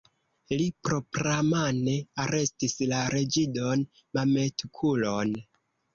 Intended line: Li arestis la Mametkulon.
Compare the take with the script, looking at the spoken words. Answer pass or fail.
fail